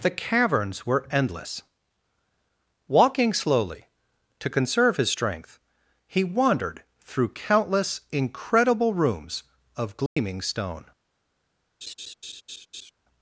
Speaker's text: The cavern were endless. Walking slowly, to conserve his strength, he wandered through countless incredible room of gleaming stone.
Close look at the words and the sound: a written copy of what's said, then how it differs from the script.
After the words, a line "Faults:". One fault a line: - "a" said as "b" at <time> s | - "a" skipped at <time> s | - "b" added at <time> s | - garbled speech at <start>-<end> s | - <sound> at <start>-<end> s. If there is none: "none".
The caverns were endless. Walking slowly, to conserve his strength, he wandered through countless incredible rooms of gleaming stone.
Faults:
- "cavern" said as "caverns" at 0.1 s
- "room" said as "rooms" at 8.9 s
- dropout at 10.1-10.2 s
- laugh at 11.8-12.9 s